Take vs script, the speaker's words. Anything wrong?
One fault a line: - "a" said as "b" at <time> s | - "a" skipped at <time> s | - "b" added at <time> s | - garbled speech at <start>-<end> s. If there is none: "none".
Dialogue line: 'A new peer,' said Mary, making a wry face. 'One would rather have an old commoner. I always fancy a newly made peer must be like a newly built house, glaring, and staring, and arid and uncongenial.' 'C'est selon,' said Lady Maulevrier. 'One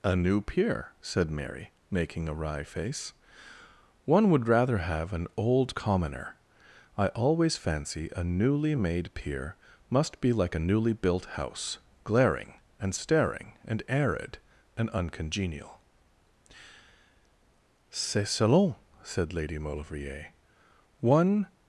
none